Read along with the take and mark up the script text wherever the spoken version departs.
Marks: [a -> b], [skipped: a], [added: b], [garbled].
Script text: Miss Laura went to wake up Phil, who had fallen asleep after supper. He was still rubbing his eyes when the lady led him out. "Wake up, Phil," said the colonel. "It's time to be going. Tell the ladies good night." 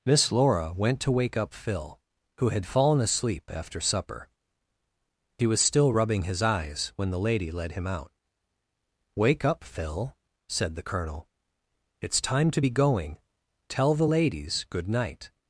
Miss Laura went to wake up Phil, who had fallen asleep after supper. He was still rubbing his eyes when the lady led him out. "Wake up, Phil," said the colonel. "It's time to be going. Tell the ladies good night."